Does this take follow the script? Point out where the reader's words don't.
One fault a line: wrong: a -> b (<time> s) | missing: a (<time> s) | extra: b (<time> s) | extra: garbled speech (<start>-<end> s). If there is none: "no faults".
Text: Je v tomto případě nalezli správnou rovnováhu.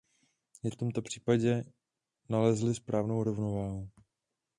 no faults